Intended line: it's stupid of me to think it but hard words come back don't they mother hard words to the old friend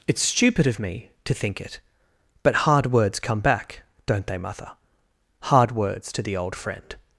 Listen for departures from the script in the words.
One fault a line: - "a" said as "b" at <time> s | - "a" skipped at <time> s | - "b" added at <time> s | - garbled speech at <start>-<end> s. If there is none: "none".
none